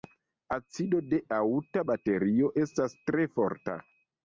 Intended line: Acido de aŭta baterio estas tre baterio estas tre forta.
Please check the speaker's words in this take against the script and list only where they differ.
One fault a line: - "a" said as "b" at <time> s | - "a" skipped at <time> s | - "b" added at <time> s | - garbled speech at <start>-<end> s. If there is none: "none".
- "baterio estas tre" skipped at 3.3 s